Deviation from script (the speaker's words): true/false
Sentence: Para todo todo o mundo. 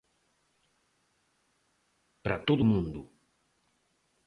true